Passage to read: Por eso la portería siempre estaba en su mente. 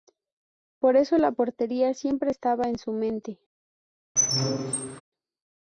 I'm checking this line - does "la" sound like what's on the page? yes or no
yes